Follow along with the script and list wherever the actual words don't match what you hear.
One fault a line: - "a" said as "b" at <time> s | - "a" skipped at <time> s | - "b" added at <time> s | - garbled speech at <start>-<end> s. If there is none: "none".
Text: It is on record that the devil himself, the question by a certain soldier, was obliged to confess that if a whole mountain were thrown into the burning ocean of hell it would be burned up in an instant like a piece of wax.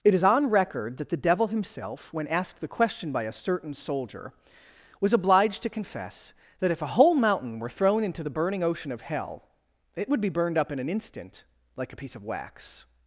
- "when asked" added at 2.1 s